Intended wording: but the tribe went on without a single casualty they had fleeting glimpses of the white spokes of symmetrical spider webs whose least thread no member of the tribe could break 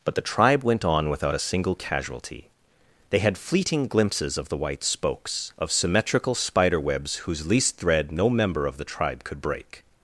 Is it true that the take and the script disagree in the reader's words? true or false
false